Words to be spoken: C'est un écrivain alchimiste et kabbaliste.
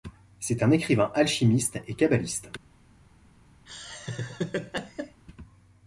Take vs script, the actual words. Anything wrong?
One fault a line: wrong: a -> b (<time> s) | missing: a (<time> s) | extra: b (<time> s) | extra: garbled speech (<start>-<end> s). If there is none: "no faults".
no faults